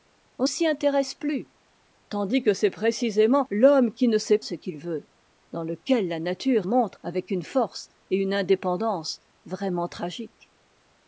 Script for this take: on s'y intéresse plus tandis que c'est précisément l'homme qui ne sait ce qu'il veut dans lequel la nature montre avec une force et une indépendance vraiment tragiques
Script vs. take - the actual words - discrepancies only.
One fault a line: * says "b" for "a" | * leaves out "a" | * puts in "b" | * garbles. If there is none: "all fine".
all fine